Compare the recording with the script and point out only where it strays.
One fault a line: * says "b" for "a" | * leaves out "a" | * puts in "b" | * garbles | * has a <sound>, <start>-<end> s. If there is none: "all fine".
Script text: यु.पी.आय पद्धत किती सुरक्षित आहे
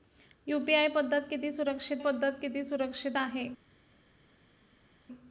* puts in "पद्धत किती सुरक्षित"